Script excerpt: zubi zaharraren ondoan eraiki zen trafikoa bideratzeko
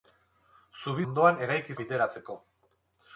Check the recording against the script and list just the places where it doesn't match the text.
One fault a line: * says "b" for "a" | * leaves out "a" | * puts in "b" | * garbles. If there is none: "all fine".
* leaves out "zaharraren"
* leaves out "zen trafikoa"